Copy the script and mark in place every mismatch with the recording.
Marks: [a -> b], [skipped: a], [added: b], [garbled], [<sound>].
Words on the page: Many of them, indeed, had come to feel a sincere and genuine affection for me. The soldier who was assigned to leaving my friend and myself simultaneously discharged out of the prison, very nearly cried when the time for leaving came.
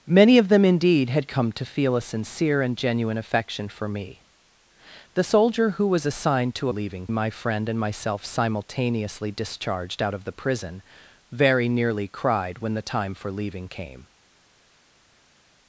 Many of them, indeed, had come to feel a sincere and genuine affection for me. The soldier who was assigned to leaving my friend and myself simultaneously discharged out of the prison, very nearly cried when the time for leaving came.